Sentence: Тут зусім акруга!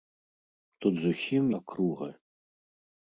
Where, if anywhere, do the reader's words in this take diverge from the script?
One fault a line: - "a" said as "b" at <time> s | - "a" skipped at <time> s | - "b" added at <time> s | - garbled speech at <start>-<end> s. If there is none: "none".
none